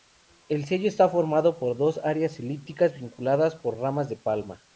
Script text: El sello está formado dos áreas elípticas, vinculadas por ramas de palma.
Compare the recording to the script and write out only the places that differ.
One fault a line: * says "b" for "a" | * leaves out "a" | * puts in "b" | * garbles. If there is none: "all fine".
* puts in "por"